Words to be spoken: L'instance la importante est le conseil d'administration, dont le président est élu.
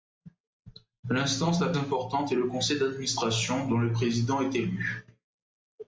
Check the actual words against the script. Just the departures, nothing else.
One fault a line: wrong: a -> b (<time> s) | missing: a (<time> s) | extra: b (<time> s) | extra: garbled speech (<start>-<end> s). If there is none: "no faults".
no faults